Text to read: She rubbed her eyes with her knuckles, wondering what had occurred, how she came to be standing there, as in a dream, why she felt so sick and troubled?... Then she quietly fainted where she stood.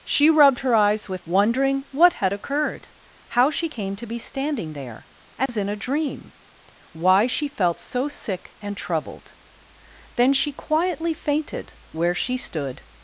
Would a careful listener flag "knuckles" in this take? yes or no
yes